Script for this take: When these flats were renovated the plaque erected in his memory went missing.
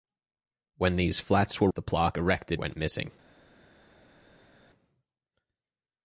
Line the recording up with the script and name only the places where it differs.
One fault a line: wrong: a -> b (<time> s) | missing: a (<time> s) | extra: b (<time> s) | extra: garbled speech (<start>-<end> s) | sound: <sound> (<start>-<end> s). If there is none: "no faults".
missing: renovated (1.7 s)
missing: in his memory (2.6 s)